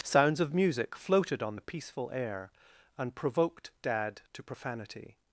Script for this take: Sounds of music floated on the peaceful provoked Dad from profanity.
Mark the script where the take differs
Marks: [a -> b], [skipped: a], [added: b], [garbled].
Sounds of music floated on the peaceful [added: air and] provoked Dad [from -> to] profanity.